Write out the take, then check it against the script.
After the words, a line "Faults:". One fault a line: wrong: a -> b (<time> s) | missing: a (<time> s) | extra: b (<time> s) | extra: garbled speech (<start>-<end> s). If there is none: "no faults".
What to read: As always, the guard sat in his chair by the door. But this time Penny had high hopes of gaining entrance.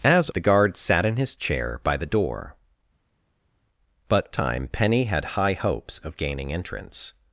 As the guard sat in his chair by the door. But time Penny had high hopes of gaining entrance.
Faults:
missing: always (0.3 s)
missing: this (4.3 s)